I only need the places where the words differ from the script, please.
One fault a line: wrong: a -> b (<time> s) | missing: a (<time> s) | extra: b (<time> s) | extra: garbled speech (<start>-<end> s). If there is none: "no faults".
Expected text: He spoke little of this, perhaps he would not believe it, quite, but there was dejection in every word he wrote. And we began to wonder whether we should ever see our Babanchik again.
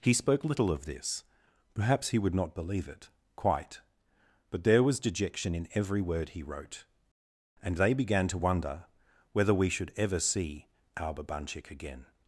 wrong: we -> they (7.8 s)